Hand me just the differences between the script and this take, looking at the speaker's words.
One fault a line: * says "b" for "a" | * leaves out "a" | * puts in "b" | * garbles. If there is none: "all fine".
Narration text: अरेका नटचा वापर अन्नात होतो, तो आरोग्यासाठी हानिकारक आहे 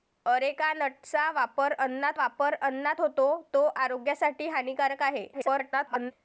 * puts in "वापर अन्नात"
* garbles